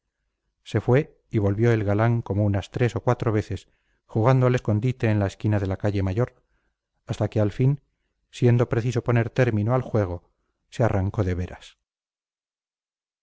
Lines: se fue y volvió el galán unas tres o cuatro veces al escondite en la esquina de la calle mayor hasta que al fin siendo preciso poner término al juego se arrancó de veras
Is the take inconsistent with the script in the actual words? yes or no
yes